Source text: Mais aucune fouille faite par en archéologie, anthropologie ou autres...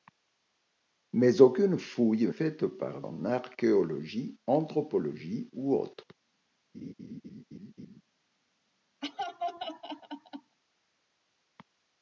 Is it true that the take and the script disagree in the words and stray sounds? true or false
true